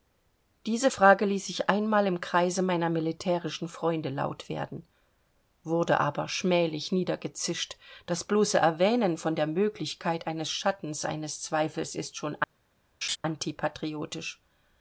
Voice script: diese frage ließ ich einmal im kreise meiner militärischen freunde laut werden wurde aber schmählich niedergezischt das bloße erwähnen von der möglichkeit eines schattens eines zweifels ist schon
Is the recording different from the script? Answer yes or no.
no